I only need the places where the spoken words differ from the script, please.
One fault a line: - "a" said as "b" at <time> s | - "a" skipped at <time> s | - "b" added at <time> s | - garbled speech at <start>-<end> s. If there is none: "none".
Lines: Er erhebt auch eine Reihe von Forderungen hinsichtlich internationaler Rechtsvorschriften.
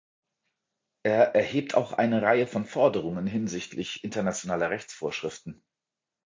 none